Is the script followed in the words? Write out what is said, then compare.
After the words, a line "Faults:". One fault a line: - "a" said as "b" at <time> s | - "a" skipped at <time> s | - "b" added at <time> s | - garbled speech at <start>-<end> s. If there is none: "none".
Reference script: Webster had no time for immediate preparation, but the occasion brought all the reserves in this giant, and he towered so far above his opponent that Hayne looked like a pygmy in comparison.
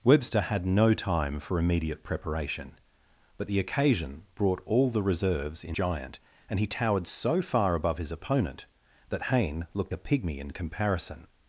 Webster had no time for immediate preparation, but the occasion brought all the reserves in giant, and he towered so far above his opponent that Hayne looked a pygmy in comparison.
Faults:
- "this" skipped at 5.8 s
- "like" skipped at 9.9 s